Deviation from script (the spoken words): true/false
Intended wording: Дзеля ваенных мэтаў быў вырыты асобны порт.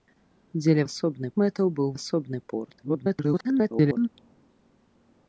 true